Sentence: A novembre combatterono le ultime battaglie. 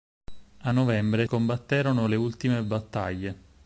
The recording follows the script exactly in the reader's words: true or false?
true